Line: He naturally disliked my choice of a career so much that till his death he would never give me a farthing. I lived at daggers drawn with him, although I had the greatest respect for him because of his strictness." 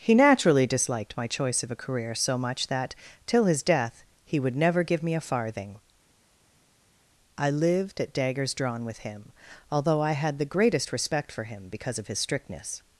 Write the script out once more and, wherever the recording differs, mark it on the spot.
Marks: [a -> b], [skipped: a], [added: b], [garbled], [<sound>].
He naturally disliked my choice of a career so much that till his death he would never give me a farthing. I lived at daggers drawn with him, although I had the greatest respect for him because of his strictness."